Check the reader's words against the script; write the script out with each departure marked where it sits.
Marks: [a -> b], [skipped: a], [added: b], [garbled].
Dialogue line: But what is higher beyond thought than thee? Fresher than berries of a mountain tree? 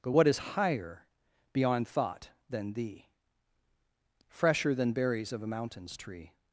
But what is higher beyond thought than thee? Fresher than berries of a [mountain -> mountains] tree?